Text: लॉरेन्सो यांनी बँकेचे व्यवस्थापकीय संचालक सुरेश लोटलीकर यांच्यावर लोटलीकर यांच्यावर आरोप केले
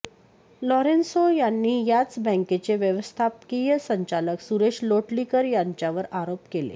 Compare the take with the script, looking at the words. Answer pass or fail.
fail